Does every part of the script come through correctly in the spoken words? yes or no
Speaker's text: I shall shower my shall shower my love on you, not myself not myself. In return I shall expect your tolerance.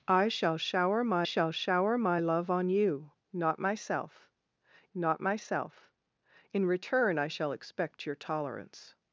yes